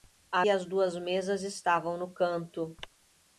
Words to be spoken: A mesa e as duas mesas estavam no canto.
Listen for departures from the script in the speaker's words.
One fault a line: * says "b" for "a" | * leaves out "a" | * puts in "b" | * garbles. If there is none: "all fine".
* leaves out "mesa"